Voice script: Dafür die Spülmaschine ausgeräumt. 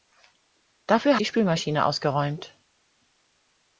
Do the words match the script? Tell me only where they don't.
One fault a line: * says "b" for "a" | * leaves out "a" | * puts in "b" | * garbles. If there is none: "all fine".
all fine